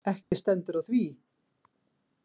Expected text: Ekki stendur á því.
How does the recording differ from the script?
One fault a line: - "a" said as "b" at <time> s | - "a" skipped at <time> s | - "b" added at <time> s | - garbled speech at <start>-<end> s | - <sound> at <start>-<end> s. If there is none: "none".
- dropout at 0.2-0.3 s